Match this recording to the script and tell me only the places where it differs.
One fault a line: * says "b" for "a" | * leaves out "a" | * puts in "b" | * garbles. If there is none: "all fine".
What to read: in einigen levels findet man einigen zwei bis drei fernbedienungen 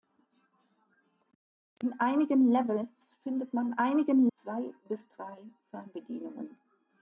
all fine